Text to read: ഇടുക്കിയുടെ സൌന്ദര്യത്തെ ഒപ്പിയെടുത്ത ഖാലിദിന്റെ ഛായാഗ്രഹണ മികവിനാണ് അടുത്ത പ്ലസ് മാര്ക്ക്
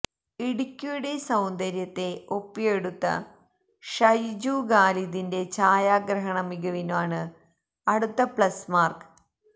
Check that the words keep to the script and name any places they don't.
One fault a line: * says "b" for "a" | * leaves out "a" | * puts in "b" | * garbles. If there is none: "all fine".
* puts in "ഷൈജു"